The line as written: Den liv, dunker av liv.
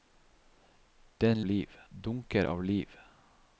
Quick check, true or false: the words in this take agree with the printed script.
true